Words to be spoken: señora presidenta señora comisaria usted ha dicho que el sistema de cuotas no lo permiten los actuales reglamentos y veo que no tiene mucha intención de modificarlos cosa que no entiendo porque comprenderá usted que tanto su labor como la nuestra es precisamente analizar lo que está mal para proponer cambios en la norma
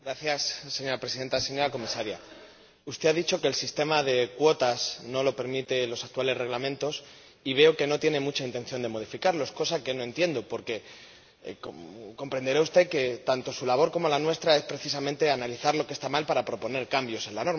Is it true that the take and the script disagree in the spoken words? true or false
false